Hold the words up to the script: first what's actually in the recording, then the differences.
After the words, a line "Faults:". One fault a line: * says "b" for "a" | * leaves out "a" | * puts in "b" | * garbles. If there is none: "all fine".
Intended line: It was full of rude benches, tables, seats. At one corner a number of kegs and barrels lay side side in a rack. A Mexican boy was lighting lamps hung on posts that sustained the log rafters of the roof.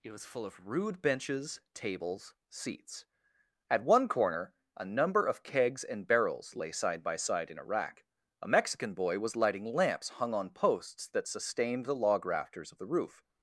It was full of rude benches, tables, seats. At one corner a number of kegs and barrels lay side by side in a rack. A Mexican boy was lighting lamps hung on posts that sustained the log rafters of the roof.
Faults:
* puts in "by"